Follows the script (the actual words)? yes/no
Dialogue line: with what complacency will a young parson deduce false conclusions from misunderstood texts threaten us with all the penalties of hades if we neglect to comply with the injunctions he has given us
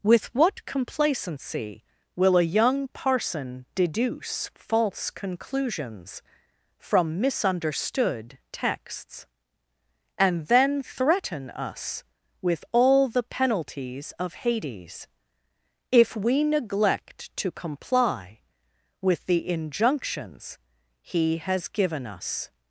no